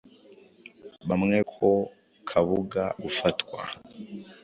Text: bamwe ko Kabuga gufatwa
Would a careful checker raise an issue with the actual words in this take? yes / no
no